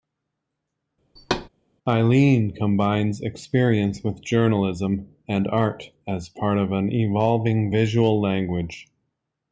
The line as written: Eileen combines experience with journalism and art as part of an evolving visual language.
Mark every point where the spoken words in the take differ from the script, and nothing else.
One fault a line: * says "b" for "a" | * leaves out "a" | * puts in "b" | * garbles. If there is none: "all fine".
all fine